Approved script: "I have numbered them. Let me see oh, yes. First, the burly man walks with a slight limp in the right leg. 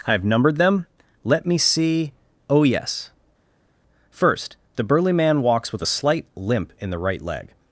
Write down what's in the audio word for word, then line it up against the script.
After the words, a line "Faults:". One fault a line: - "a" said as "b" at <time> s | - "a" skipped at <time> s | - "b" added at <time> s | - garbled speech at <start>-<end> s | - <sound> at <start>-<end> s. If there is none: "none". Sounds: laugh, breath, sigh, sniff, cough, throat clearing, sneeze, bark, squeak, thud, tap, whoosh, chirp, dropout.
"I have numbered them. Let me see oh, yes. First, the burly man walks with a slight limp in the right leg.
Faults:
none